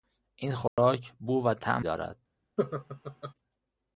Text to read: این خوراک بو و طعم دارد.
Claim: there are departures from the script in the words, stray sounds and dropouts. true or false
true